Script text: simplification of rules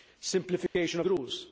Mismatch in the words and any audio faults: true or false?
true